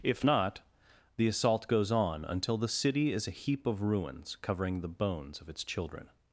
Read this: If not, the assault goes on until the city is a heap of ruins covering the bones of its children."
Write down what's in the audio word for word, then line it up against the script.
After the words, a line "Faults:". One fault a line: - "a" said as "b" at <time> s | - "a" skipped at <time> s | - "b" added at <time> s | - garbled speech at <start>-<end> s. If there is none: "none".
If not, the assault goes on until the city is a heap of ruins covering the bones of its children."
Faults:
none